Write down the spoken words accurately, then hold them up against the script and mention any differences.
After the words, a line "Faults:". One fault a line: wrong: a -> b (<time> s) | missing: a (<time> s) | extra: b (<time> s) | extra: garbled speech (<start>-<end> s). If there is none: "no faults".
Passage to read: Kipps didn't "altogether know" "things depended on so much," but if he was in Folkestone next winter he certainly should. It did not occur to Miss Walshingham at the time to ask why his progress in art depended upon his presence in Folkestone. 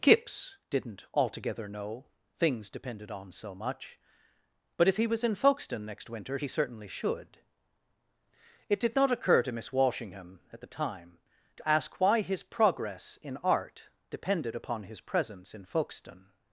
Kipps didn't "altogether know" "things depended on so much," but if he was in Folkestone next winter he certainly should. It did not occur to Miss Walshingham at the time to ask why his progress in art depended upon his presence in Folkestone.
Faults:
no faults